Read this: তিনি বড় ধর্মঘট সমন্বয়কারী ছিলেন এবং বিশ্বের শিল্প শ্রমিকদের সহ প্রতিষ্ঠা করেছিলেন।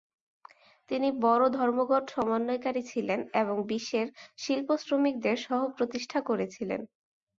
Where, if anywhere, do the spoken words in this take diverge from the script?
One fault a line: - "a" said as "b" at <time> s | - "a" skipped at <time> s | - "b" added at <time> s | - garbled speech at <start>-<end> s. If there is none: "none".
none